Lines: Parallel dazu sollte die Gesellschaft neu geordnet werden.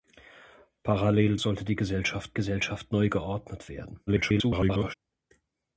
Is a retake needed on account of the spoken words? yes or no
yes